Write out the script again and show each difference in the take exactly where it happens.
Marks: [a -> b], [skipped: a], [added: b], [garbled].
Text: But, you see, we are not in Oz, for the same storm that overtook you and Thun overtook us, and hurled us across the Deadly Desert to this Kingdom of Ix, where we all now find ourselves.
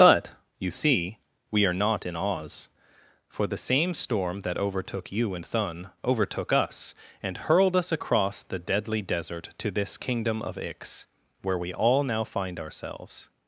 But, you see, we are not in Oz, for the same storm that overtook you and Thun overtook us, and hurled us across the Deadly Desert to this Kingdom of Ix, where we all now find ourselves.